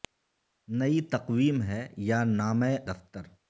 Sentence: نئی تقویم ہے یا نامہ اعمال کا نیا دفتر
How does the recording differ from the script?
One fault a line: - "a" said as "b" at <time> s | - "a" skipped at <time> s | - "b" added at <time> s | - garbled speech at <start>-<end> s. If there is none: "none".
- "اعمال کا نیا" skipped at 2.7 s